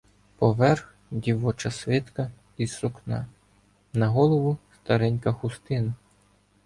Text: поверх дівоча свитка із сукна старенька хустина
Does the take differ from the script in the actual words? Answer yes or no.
yes